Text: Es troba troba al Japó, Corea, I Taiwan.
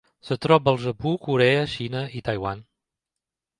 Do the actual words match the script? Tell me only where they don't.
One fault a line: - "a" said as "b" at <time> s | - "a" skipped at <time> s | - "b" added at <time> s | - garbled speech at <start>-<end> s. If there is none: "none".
- "troba" skipped at 0.7 s
- "Xina" added at 1.8 s